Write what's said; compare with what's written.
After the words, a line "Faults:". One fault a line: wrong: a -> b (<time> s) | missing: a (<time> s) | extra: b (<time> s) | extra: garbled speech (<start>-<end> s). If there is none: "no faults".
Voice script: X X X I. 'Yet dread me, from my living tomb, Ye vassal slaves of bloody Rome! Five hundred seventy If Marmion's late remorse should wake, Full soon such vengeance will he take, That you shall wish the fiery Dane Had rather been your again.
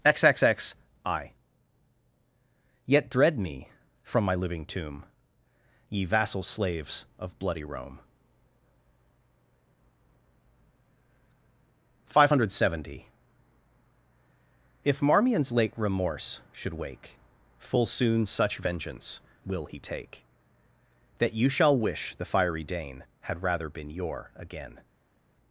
X X X I. 'Yet dread me, from my living tomb, Ye vassal slaves of bloody Rome! Five hundred seventy If Marmion's late remorse should wake, Full soon such vengeance will he take, That you shall wish the fiery Dane Had rather been your again.
Faults:
no faults